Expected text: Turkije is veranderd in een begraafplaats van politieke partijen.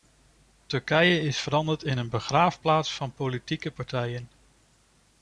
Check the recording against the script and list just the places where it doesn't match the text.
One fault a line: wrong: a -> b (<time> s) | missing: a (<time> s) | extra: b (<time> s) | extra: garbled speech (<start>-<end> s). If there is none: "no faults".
no faults